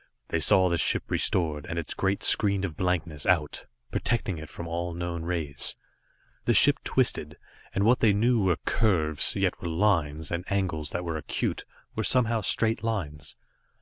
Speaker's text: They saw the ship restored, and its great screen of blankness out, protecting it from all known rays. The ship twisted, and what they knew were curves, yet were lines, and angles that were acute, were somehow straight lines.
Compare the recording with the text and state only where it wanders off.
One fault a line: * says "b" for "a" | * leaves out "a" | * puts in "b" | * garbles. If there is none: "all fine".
all fine